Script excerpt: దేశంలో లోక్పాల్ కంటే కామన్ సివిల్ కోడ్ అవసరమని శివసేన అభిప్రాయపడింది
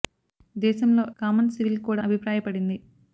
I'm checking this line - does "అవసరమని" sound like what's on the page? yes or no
no